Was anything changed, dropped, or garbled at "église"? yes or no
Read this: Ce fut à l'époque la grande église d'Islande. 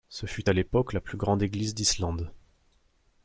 no